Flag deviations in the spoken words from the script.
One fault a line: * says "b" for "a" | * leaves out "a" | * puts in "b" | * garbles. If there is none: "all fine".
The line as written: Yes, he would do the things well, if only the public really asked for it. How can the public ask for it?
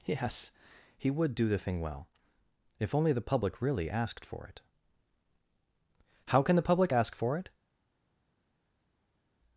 * says "thing" for "things"